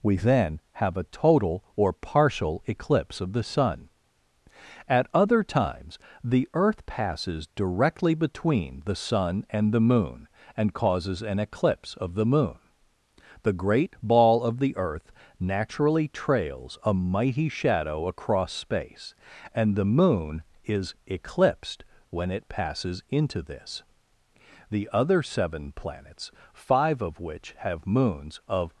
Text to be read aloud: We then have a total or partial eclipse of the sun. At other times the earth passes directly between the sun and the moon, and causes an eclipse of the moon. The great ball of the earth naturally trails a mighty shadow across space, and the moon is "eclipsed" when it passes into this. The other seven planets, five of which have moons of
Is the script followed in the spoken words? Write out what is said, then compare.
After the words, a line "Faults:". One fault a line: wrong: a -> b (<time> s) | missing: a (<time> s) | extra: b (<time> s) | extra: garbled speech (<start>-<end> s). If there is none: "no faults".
We then have a total or partial eclipse of the sun. At other times the earth passes directly between the sun and the moon, and causes an eclipse of the moon. The great ball of the earth naturally trails a mighty shadow across space, and the moon is "eclipsed" when it passes into this. The other seven planets, five of which have moons of
Faults:
no faults